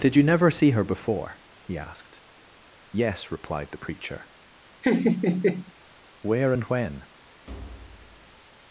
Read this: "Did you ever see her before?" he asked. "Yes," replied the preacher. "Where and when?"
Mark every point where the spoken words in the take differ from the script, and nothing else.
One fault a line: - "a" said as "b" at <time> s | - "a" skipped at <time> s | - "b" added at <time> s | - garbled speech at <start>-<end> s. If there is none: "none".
- "ever" said as "never" at 0.2 s